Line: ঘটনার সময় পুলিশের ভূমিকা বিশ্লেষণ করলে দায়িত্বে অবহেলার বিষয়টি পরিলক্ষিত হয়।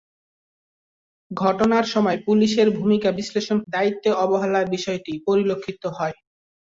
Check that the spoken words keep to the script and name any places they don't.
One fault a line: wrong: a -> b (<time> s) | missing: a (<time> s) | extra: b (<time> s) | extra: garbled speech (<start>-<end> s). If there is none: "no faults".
missing: করলে (3.6 s)